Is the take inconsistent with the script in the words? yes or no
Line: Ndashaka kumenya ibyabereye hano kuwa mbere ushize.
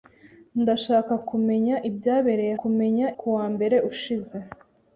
yes